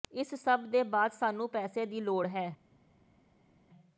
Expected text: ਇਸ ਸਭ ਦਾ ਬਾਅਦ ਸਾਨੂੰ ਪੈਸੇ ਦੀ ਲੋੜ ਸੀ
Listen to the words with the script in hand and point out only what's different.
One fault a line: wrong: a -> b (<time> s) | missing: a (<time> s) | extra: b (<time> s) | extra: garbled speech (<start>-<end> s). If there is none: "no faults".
wrong: ਦਾ -> ਦੇ (0.7 s)
wrong: ਸੀ -> ਹੈ (2.3 s)